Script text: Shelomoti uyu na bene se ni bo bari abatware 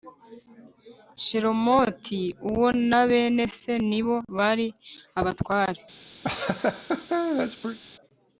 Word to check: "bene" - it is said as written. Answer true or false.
true